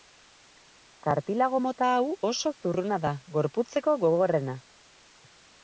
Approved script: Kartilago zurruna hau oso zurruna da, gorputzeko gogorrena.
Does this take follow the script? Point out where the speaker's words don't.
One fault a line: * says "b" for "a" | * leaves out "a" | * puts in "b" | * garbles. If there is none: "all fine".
* says "mota" for "zurruna"